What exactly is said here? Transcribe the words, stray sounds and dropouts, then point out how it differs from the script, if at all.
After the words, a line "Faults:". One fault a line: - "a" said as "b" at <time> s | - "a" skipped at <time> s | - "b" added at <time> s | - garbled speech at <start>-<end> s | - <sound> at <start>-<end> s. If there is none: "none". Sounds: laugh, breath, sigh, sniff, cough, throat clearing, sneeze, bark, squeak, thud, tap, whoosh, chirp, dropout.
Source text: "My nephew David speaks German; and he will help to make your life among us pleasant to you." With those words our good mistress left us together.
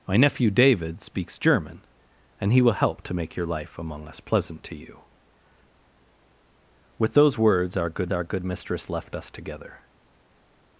"My nephew David speaks German; and he will help to make your life among us pleasant to you." With those words our good our good mistress left us together.
Faults:
- "our good" added at 8.1 s